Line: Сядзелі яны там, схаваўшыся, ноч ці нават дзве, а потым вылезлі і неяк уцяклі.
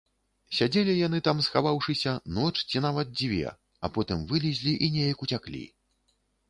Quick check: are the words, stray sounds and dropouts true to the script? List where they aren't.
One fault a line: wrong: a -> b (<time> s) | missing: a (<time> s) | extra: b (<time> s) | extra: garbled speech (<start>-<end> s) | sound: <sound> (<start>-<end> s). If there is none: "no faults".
no faults